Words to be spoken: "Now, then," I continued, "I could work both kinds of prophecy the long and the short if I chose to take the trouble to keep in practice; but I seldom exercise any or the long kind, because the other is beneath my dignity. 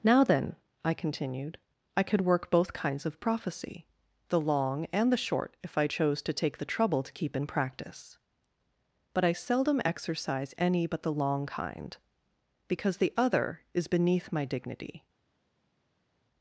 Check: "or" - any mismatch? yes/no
yes